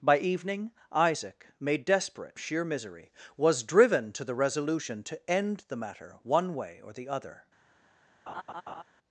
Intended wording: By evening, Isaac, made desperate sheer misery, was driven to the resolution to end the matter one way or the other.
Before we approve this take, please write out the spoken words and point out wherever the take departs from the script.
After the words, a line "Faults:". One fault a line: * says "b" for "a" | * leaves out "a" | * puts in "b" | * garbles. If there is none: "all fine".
By evening, Isaac, made desperate sheer misery, was driven to the resolution to end the matter one way or the other.
Faults:
all fine